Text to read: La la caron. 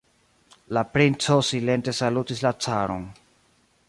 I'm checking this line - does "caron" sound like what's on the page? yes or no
yes